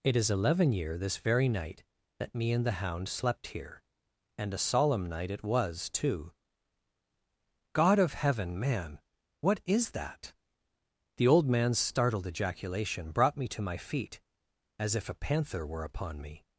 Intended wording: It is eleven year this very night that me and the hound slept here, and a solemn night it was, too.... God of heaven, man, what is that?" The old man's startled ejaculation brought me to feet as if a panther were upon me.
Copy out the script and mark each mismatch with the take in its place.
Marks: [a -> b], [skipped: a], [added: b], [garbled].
It is eleven year this very night that me and the hound slept here, and a solemn night it was, too.... God of heaven, man, what is that?" The old man's startled ejaculation brought me to [added: my] feet as if a panther were upon me.